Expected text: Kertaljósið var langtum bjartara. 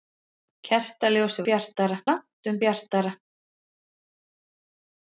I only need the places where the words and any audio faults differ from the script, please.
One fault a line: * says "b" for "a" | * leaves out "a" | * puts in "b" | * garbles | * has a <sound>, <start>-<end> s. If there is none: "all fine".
* says "bjartara" for "var"